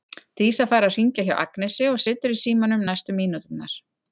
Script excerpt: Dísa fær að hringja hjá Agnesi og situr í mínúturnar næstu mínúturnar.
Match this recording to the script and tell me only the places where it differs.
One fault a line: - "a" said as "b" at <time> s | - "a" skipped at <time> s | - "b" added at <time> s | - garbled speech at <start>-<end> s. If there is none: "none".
- "mínúturnar" said as "símanum" at 2.4 s